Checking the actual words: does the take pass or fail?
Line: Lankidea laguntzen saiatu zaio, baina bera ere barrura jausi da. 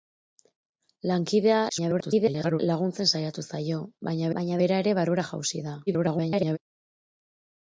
fail